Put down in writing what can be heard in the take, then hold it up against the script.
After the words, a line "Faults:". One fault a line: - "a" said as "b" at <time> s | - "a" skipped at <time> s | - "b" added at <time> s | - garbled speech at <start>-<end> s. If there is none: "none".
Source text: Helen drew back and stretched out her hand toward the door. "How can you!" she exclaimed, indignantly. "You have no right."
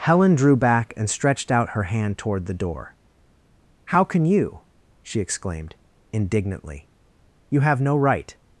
Helen drew back and stretched out her hand toward the door. "How can you!" she exclaimed, indignantly. "You have no right."
Faults:
none